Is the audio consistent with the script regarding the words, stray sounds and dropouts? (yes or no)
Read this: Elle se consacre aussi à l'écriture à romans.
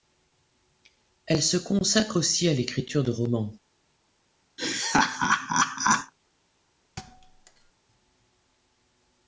no